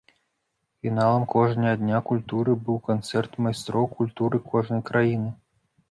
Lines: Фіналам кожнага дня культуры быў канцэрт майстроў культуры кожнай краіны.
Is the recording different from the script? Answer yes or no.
no